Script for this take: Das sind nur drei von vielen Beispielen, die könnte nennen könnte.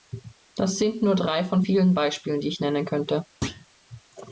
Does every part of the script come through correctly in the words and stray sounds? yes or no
no